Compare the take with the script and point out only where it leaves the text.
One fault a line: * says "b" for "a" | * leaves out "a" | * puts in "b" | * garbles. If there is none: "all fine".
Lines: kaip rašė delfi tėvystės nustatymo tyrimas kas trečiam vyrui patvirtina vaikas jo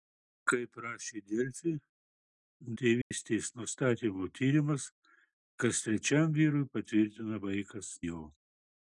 all fine